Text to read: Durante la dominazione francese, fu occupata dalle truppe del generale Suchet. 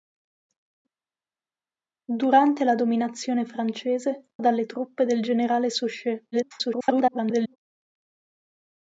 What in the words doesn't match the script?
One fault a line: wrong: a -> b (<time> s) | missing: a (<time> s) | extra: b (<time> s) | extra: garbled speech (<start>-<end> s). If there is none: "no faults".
missing: fu occupata (4.3 s)
extra: garbled speech (6.3-7.6 s)